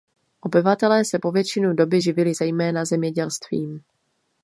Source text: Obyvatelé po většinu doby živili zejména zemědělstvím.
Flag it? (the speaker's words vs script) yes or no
yes